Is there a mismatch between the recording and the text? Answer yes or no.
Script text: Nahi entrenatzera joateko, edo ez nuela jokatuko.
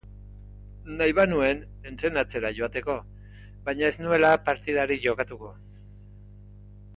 yes